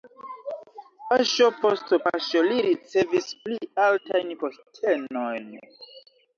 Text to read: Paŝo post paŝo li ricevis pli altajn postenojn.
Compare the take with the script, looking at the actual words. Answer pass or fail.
pass